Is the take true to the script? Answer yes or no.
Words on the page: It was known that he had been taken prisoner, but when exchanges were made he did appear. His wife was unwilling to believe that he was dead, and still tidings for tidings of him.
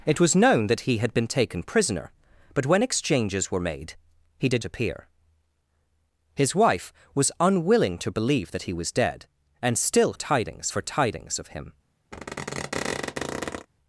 yes